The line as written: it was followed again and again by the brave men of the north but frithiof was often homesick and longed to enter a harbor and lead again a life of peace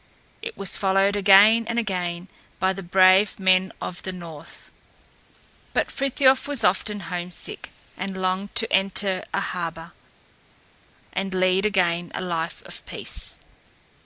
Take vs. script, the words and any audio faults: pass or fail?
pass